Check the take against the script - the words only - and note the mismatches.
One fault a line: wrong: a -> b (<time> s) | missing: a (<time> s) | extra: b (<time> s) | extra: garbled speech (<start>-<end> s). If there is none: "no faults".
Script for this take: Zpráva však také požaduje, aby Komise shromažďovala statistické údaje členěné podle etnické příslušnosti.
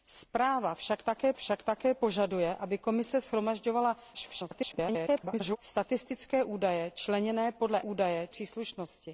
extra: však také (1.3 s)
extra: garbled speech (4.1-5.6 s)
wrong: etnické -> údaje (7.8 s)